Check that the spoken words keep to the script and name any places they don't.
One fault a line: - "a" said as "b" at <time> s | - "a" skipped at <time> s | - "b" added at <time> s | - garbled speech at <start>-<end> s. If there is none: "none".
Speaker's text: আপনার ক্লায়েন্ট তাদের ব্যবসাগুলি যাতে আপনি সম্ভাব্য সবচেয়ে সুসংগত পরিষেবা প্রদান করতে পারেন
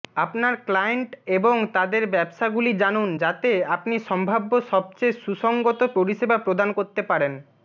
- "এবং" added at 1.4 s
- "জানুন" added at 2.8 s